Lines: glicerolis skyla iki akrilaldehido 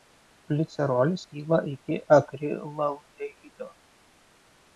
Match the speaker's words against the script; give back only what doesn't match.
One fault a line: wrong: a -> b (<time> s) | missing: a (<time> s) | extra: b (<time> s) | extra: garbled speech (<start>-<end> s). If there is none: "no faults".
no faults